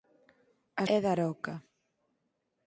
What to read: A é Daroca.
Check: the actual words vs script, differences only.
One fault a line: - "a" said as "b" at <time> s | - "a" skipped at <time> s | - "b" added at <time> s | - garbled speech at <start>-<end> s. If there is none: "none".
none